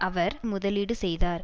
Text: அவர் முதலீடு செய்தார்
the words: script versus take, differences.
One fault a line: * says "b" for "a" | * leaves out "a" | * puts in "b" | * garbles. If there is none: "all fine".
all fine